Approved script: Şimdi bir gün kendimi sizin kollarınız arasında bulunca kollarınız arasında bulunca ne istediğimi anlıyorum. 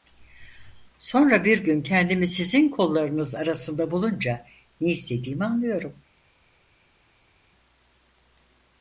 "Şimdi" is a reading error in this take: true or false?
true